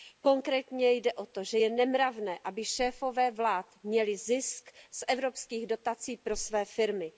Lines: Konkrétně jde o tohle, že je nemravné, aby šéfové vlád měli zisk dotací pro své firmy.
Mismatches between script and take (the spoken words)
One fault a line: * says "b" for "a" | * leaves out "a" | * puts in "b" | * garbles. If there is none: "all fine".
* says "to" for "tohle"
* puts in "z evropských"